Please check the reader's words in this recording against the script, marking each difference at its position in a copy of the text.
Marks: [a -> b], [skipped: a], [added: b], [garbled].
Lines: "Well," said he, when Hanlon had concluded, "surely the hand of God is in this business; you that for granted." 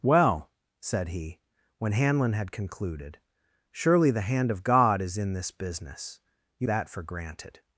"Well," said he, when Hanlon had concluded, "surely the hand of God is in this business; you that for granted."